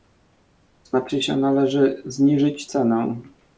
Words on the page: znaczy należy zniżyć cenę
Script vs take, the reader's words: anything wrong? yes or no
yes